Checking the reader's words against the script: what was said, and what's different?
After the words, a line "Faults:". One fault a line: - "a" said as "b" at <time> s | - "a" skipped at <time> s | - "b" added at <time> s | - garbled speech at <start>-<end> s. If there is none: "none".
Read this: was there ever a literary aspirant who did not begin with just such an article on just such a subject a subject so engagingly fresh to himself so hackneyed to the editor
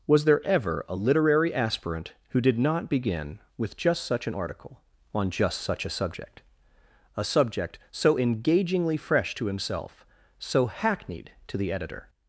was there ever a literary aspirant who did not begin with just such an article on just such a subject a subject so engagingly fresh to himself so hackneyed to the editor
Faults:
none